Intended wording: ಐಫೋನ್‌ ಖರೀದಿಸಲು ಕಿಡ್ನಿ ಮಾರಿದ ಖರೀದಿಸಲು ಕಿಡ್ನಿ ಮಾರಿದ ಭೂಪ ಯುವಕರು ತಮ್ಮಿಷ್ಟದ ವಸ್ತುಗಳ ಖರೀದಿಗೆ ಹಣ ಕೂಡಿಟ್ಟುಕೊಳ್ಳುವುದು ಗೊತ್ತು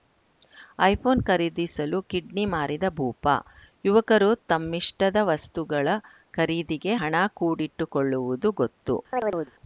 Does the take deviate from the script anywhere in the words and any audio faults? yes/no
yes